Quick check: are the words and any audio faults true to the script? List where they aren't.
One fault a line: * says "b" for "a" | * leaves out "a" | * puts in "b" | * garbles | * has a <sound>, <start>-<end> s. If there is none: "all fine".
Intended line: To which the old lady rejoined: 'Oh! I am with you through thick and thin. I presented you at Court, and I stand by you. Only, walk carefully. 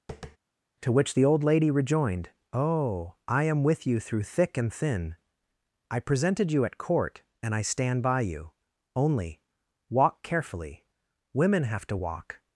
* has a tap, 0.1-0.4 s
* puts in "Women have to walk"